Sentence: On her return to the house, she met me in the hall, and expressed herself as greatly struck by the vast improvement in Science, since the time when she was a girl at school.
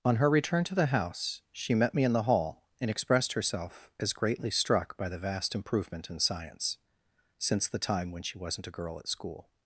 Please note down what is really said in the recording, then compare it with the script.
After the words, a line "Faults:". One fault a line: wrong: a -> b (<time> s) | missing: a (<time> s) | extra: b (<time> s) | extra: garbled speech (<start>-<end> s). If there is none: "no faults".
On her return to the house, she met me in the hall, and expressed herself as greatly struck by the vast improvement in Science, since the time when she wasn't a girl at school.
Faults:
wrong: was -> wasn't (8.4 s)